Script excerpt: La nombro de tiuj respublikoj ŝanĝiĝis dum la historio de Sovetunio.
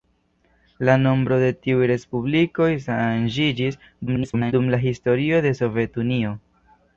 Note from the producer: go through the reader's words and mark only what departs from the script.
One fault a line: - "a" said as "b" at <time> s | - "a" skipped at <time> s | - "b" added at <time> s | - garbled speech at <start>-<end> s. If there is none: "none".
- garbled speech at 4.1-4.5 s